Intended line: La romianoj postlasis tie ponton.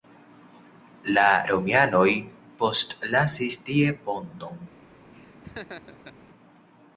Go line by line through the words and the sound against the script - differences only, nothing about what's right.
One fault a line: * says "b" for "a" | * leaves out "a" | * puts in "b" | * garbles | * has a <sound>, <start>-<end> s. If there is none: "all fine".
* has a laugh, 5.1-6.1 s